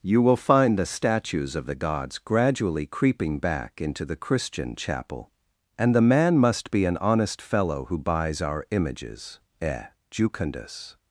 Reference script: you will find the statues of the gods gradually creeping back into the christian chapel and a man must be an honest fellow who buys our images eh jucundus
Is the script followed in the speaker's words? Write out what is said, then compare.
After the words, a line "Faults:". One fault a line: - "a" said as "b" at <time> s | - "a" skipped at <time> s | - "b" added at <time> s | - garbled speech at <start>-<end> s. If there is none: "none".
you will find the statues of the gods gradually creeping back into the christian chapel and the man must be an honest fellow who buys our images eh jucundus
Faults:
- "a" said as "the" at 5.9 s